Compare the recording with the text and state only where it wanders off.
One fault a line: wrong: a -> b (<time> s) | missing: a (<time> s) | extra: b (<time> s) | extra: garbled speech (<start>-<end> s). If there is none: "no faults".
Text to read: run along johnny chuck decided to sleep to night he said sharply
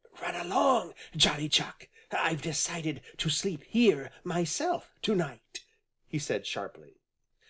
extra: i've (2.1 s)
extra: here myself (3.6 s)